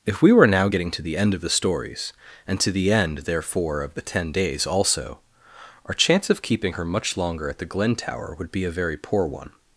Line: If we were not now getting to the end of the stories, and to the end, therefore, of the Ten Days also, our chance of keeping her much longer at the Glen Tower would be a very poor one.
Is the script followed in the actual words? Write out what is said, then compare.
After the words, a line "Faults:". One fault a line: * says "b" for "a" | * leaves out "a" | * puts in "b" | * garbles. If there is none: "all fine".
If we were now getting to the end of the stories, and to the end, therefore, of the Ten Days also, our chance of keeping her much longer at the Glen Tower would be a very poor one.
Faults:
* leaves out "not"